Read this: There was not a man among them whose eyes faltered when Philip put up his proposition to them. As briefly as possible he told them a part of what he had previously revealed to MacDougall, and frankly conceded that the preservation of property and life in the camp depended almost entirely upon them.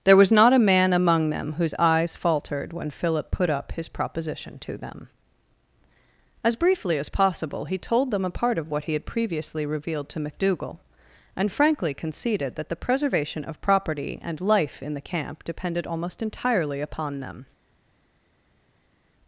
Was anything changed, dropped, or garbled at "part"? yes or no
no